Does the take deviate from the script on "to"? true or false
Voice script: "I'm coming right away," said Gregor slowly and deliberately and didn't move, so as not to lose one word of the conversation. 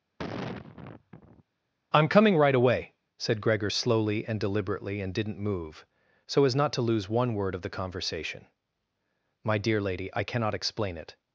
false